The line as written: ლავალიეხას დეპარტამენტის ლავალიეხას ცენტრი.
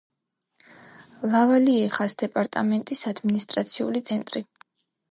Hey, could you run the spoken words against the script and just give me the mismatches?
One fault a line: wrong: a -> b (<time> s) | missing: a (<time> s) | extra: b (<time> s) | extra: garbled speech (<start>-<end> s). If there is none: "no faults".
wrong: ლავალიეხას -> ადმინისტრაციული (3.1 s)